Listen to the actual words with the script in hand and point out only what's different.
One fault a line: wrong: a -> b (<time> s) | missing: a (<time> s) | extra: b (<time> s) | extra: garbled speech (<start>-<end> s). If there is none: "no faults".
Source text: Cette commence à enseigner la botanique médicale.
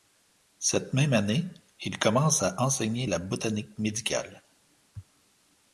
extra: même année il (0.9 s)